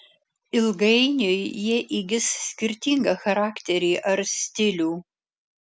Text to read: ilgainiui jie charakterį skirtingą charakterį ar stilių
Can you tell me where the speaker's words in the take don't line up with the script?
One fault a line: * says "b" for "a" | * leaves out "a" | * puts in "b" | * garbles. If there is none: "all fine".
* says "įgis" for "charakterį"